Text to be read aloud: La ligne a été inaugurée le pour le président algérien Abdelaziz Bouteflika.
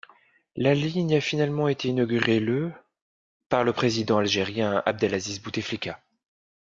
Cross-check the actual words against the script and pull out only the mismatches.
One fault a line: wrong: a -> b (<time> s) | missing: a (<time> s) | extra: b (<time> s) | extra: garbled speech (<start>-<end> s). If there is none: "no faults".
extra: finalement (1.2 s)
wrong: pour -> par (3.5 s)